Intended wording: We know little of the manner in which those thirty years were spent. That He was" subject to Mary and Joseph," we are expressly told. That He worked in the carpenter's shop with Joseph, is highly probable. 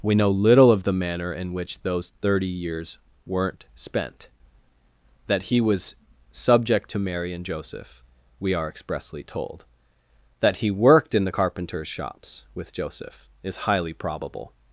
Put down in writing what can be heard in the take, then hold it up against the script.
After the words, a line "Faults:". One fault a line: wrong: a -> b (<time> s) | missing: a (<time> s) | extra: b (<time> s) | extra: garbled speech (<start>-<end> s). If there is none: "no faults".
We know little of the manner in which those thirty years weren't spent. That He was" subject to Mary and Joseph," we are expressly told. That He worked in the carpenter's shops with Joseph, is highly probable.
Faults:
wrong: were -> weren't (3.2 s)
wrong: shop -> shops (11.9 s)